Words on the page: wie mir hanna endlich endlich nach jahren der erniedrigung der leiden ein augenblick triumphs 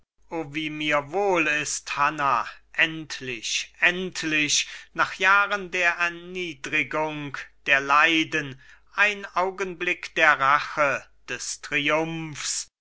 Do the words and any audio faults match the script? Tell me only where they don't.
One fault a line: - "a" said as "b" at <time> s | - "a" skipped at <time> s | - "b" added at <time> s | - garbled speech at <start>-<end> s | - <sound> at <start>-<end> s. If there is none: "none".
- "wohl ist" added at 1.1 s
- "der rache des" added at 10.1 s